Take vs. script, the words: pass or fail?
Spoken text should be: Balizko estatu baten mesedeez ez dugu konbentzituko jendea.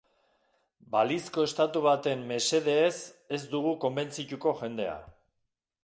pass